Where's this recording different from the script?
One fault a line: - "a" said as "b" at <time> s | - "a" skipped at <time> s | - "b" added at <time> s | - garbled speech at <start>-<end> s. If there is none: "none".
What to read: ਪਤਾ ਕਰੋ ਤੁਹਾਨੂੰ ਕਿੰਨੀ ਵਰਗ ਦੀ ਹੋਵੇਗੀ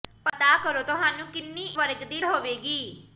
none